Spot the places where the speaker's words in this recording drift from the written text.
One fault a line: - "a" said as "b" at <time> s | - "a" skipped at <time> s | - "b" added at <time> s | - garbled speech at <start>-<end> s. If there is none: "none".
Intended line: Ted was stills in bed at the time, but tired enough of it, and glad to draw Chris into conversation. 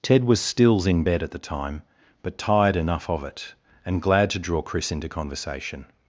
none